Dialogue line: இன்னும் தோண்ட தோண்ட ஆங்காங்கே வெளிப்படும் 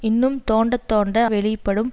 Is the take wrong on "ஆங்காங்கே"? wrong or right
wrong